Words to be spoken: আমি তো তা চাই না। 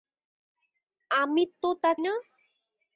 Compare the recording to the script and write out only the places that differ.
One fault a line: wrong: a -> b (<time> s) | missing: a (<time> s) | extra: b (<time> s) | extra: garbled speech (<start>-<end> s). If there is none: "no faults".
missing: চাই (1.9 s)